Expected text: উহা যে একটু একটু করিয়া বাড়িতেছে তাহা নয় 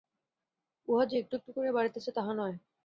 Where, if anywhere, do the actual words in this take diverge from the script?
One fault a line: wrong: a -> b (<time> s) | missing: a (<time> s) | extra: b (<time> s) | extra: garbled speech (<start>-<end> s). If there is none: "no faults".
no faults